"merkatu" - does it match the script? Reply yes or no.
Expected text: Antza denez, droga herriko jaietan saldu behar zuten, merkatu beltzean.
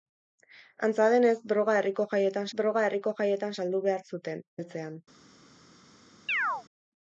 no